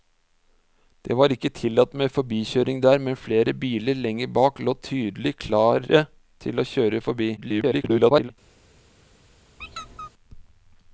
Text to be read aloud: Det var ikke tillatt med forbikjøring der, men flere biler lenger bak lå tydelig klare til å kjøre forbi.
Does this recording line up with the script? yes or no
no